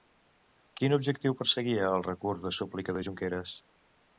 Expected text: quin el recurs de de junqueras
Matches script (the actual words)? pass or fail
fail